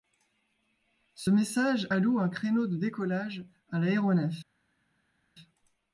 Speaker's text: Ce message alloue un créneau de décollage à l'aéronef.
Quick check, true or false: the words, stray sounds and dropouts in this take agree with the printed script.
true